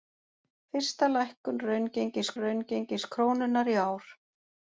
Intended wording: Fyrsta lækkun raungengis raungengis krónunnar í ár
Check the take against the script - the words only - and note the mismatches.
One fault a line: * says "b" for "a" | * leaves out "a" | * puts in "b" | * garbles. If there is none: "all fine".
all fine